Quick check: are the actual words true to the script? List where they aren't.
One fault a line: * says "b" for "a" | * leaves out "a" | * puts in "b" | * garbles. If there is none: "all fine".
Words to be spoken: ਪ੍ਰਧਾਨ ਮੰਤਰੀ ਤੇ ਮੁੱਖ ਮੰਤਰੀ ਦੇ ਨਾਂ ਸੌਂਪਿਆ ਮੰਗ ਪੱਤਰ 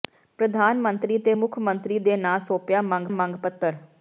* puts in "ਮੰਗ"